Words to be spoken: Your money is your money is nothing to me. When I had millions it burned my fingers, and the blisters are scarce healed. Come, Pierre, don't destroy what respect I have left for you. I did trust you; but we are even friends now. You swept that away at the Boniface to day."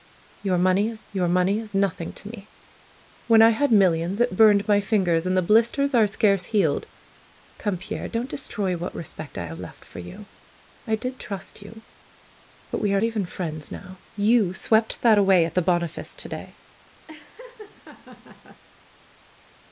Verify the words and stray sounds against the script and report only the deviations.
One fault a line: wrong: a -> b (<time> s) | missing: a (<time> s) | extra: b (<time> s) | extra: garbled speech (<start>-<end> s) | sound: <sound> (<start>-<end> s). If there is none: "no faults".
sound: laugh (17.1-18.6 s)